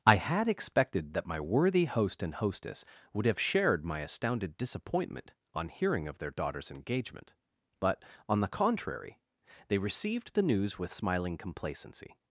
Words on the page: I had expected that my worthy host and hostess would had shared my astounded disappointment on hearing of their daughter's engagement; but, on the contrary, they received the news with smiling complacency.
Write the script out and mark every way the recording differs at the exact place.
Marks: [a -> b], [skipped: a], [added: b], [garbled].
I had expected that my worthy host and hostess would [had -> have] shared my astounded disappointment on hearing of their daughter's engagement; but, on the contrary, they received the news with smiling complacency.